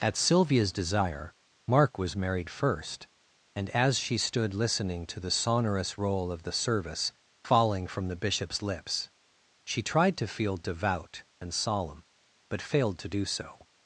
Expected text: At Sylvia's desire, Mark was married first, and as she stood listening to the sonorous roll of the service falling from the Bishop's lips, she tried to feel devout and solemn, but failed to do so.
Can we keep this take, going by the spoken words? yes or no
yes